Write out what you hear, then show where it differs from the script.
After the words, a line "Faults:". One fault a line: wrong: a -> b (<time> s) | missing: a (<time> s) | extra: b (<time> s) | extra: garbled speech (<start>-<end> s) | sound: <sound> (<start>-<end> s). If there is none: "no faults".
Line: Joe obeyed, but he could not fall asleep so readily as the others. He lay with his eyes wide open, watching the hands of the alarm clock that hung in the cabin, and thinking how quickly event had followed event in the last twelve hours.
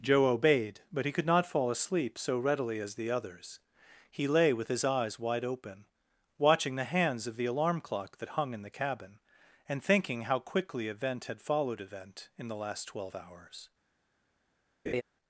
Joe obeyed, but he could not fall asleep so readily as the others. He lay with his eyes wide open, watching the hands of the alarm clock that hung in the cabin, and thinking how quickly event had followed event in the last twelve hours.
Faults:
sound: laugh (14.9-15.0 s)